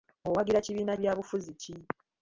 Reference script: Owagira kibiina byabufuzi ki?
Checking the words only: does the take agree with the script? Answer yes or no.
yes